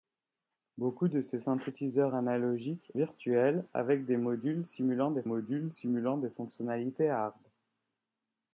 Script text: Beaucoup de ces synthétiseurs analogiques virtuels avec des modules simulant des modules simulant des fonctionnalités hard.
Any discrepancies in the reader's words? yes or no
no